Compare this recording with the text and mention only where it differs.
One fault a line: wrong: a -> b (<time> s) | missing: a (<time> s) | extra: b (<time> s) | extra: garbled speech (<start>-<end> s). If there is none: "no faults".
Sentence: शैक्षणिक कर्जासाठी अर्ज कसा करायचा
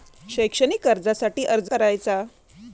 missing: कसा (1.7 s)